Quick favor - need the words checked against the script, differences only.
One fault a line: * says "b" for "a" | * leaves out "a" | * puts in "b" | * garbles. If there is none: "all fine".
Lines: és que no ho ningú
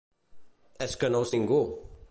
all fine